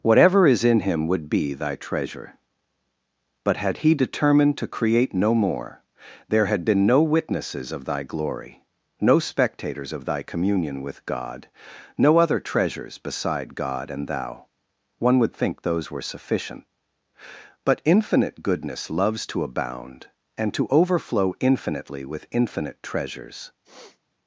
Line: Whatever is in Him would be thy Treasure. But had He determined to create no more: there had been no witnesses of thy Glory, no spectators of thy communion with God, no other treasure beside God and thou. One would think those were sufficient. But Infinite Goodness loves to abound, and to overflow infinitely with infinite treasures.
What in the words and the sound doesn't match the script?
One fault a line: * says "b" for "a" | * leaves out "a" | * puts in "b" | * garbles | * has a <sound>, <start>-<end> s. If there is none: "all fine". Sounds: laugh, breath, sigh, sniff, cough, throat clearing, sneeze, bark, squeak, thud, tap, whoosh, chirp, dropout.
* says "treasures" for "treasure"
* has a sniff, 23.6-24.0 s